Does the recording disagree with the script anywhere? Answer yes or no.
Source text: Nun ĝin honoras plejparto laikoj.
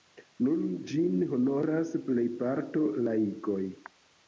no